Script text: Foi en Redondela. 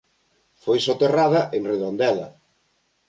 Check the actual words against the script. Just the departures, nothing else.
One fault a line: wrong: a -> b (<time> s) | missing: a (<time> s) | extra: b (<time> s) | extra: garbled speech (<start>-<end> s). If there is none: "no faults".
extra: soterrada (0.9 s)